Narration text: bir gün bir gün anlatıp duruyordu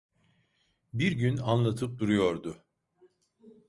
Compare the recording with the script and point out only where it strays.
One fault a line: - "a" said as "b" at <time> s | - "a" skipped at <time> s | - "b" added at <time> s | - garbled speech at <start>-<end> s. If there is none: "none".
- "bir gün" skipped at 1.4 s